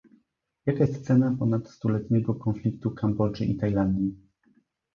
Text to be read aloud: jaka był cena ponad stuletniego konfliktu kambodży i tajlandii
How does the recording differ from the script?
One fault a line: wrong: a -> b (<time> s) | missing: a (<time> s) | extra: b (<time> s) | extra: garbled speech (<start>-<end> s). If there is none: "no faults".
wrong: był -> jest (0.8 s)